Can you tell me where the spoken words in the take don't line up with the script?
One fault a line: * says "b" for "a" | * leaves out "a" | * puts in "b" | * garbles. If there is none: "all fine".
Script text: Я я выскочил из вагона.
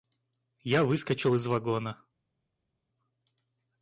* leaves out "я"